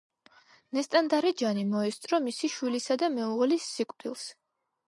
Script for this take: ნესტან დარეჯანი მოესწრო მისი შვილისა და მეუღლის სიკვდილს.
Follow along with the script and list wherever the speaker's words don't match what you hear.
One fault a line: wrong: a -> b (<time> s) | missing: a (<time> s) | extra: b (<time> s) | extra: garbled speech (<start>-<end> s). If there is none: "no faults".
no faults